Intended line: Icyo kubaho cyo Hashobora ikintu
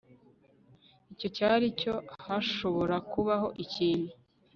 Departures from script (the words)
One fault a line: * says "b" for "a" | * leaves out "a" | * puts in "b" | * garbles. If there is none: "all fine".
* says "cyari" for "kubaho"
* puts in "kubaho"